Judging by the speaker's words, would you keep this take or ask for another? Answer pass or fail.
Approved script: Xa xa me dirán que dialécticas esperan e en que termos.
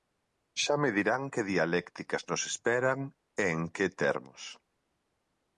fail